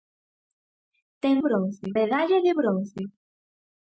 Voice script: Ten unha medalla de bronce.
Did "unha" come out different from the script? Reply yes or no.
yes